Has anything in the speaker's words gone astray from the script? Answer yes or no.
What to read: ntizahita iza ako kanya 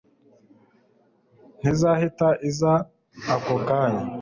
no